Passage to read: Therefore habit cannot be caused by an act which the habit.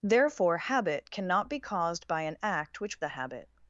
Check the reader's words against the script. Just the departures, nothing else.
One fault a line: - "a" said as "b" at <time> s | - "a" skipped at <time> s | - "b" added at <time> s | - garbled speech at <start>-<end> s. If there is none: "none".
none